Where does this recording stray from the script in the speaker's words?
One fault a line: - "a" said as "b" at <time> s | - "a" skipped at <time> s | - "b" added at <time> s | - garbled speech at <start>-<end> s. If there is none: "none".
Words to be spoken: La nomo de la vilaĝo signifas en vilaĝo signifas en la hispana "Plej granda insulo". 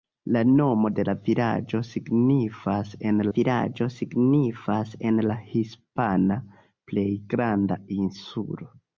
none